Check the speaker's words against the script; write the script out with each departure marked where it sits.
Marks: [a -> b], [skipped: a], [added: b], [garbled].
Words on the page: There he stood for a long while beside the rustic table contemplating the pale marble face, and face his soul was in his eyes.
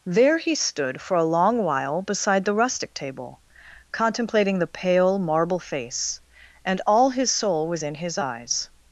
There he stood for a long while beside the rustic table contemplating the pale marble face, and [face -> all] his soul was in his eyes.